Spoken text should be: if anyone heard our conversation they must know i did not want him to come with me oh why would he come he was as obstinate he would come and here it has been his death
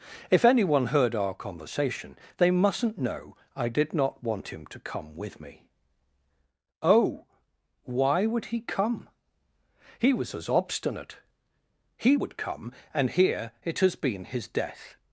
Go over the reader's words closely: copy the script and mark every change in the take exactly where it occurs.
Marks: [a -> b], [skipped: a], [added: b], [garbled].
if anyone heard our conversation they [must -> mustn't] know i did not want him to come with me oh why would he come he was as obstinate he would come and here it has been his death